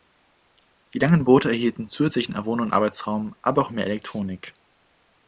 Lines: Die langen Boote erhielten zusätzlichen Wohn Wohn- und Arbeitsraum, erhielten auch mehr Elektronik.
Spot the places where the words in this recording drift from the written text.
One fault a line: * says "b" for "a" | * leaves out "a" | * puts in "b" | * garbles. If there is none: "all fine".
* leaves out "Wohn"
* says "aber" for "erhielten"